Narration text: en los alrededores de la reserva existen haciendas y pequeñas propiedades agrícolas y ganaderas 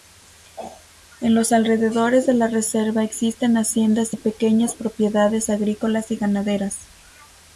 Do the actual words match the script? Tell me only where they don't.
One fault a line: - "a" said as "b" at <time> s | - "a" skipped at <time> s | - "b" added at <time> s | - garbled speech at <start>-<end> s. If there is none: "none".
none